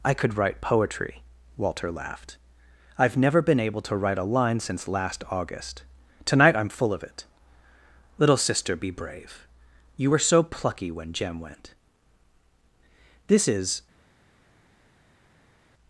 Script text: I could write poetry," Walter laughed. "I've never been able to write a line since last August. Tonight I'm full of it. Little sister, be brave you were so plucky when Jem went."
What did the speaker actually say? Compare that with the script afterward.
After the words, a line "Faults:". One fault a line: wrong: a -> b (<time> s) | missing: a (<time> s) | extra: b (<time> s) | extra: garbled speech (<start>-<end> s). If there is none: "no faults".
I could write poetry," Walter laughed. "I've never been able to write a line since last August. Tonight I'm full of it. Little sister, be brave you were so plucky when Jem went." "This is
Faults:
extra: This is (13.3 s)